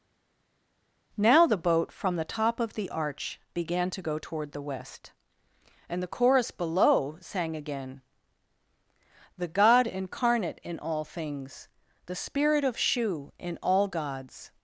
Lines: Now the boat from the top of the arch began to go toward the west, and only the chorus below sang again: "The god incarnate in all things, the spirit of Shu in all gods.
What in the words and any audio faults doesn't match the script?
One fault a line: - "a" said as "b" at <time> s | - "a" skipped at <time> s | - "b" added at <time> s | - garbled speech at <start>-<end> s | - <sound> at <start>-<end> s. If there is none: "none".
- "only" skipped at 6.0 s